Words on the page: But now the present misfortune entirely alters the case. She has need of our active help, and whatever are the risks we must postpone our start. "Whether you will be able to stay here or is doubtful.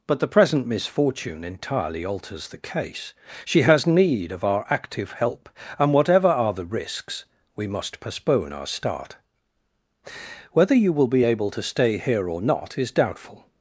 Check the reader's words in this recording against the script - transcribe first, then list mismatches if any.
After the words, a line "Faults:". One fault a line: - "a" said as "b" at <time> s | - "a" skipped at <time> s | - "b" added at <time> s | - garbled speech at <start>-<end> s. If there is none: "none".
But the present misfortune entirely alters the case. She has need of our active help, and whatever are the risks we must postpone our start. "Whether you will be able to stay here or not is doubtful.
Faults:
- "now" skipped at 0.2 s
- "not" added at 12.4 s